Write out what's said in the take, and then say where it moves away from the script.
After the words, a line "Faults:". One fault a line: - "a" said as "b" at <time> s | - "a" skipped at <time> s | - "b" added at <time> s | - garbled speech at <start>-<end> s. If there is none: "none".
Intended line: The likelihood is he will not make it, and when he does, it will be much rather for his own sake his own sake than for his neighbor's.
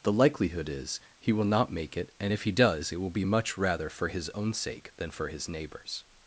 The likelihood is he will not make it, and if he does, it will be much rather for his own sake than for his neighbor's.
Faults:
- "when" said as "if" at 2.3 s
- "his own sake" skipped at 4.9 s